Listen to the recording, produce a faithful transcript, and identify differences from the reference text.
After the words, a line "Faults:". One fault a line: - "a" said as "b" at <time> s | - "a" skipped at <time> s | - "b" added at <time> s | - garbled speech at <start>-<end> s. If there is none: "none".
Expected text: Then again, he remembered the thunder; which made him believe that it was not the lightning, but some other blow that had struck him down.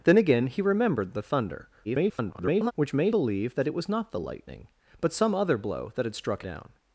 Then again, he remembered the thunder; [garbled] which made believe that it was not the lightning, but some other blow that had struck down.
Faults:
- garbled speech at 1.8-2.7 s
- "him" skipped at 3.1 s
- "him" skipped at 6.4 s